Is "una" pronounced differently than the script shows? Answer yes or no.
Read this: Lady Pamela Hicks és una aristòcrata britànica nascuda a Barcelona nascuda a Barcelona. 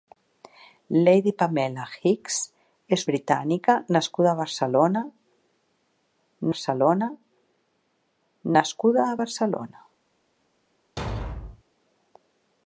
yes